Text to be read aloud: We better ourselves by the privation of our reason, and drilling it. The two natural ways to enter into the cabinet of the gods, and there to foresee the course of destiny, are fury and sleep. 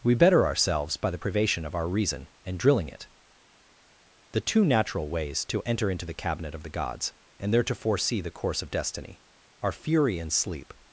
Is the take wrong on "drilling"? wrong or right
right